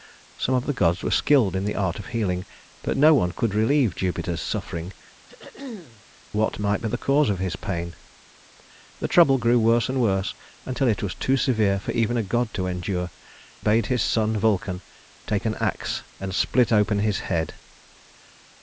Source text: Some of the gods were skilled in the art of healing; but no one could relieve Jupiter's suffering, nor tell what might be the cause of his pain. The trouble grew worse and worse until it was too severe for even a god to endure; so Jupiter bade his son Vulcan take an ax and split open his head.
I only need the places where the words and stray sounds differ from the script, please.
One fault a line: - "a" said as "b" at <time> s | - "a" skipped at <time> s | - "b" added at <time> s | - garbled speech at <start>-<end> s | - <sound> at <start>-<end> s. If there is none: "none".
- "nor tell" skipped at 4.9 s
- throat clearing at 5.3-6.0 s
- "so Jupiter" skipped at 13.1 s